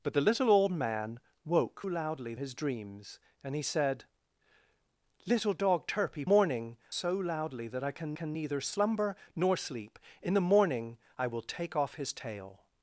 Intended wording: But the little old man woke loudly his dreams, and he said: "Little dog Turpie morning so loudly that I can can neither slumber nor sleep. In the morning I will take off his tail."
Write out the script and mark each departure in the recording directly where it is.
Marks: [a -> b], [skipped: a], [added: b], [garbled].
But the little old man woke loudly his dreams, and he said: "Little dog Turpie morning so loudly that I can can neither slumber nor sleep. In the morning I will take off his tail."